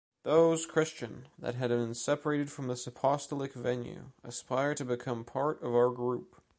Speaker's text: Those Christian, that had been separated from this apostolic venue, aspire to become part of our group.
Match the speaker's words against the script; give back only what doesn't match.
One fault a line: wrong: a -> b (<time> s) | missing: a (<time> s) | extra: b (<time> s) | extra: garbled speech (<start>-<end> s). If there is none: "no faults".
no faults